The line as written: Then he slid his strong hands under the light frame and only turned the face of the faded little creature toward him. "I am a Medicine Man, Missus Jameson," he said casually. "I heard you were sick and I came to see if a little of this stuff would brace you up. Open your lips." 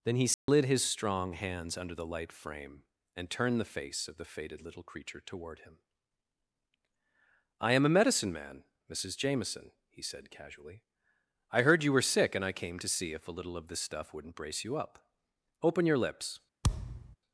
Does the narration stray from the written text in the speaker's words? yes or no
yes